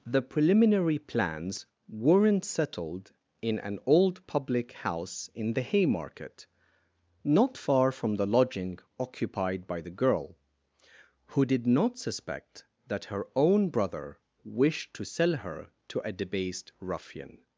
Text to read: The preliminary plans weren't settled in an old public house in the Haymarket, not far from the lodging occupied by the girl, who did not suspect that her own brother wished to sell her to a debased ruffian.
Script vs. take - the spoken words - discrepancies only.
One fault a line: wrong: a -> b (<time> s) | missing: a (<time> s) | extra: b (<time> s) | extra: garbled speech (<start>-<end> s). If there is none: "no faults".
no faults